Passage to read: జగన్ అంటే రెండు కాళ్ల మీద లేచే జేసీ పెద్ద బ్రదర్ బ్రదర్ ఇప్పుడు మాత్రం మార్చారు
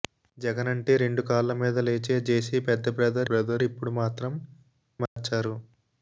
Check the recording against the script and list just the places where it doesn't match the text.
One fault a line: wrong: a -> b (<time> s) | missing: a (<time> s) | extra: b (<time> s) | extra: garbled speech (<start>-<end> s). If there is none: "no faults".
no faults